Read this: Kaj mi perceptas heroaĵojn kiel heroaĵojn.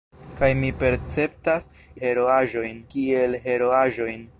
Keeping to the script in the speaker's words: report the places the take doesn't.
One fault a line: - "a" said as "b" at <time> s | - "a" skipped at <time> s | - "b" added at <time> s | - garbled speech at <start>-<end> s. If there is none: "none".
none